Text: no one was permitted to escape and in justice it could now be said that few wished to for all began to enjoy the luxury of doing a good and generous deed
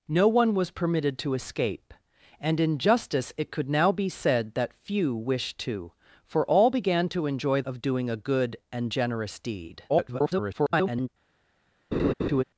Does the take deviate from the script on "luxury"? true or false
true